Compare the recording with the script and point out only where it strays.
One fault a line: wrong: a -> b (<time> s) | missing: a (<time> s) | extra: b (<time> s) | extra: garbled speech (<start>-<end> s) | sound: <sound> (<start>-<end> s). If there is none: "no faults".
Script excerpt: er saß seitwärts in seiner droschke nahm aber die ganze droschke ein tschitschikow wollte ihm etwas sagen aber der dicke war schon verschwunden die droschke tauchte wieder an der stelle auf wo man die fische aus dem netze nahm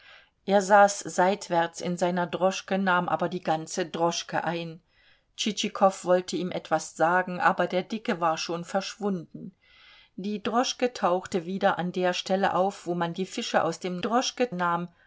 wrong: netze -> droschke (14.0 s)